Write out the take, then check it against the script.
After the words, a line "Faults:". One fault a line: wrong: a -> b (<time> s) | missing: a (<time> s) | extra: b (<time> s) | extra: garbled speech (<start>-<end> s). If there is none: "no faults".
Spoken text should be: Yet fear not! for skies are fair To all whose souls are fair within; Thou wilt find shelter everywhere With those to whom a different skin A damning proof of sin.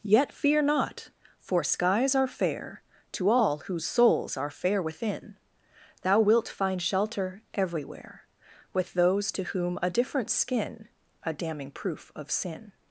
Yet fear not! for skies are fair To all whose souls are fair within; Thou wilt find shelter everywhere With those to whom a different skin A damning proof of sin.
Faults:
no faults